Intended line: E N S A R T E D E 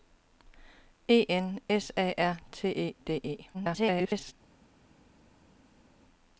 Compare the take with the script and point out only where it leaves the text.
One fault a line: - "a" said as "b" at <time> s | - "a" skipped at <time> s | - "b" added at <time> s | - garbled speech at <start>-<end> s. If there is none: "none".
- garbled speech at 3.5-4.3 s